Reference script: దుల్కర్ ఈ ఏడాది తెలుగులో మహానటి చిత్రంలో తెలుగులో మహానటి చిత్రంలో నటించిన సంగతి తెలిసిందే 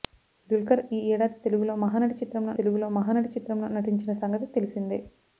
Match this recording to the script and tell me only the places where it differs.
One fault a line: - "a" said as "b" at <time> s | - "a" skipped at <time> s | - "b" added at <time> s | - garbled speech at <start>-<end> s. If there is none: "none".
none